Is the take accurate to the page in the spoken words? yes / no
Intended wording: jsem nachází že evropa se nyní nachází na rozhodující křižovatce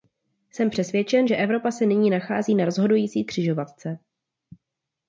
no